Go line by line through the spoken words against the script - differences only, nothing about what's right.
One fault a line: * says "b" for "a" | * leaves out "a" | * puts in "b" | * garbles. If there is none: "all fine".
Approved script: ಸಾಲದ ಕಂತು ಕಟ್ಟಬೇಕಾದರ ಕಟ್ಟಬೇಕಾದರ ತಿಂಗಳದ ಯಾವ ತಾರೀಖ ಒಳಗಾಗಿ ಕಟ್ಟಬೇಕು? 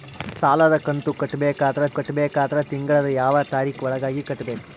all fine